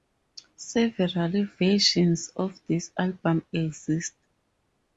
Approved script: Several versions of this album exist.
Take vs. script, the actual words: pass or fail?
pass